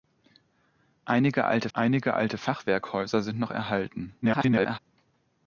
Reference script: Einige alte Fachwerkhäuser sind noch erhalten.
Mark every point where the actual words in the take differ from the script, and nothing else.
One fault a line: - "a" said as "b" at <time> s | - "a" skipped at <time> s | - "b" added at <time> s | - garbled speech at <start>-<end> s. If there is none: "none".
- "einige alte" added at 1.7 s
- garbled speech at 4.2-4.8 s